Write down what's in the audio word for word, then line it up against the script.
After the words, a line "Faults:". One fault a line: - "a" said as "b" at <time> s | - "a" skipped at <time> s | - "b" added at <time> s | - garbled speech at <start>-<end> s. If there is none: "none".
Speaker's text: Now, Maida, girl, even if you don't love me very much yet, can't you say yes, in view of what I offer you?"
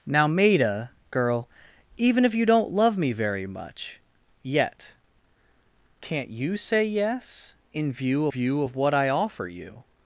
Now, Maida, girl, even if you don't love me very much yet, can't you say yes, in view view of what I offer you?"
Faults:
- "view" added at 8.3 s